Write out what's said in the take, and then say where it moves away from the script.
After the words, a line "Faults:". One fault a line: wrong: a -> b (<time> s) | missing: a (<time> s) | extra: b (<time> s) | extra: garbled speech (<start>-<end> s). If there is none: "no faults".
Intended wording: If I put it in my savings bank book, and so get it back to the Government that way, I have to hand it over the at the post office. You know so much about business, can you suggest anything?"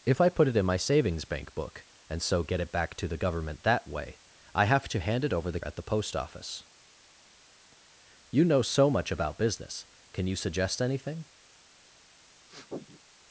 If I put it in my savings bank book, and so get it back to the Government that way, I have to hand it over the at the post office. You know so much about business, can you suggest anything?"
Faults:
no faults